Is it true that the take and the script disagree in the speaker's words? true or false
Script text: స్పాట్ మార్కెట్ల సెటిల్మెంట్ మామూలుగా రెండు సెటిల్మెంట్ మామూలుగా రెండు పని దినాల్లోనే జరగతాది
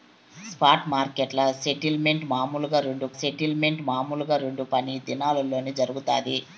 false